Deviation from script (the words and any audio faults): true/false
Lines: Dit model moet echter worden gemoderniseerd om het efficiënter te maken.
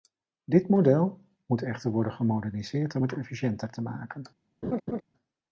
true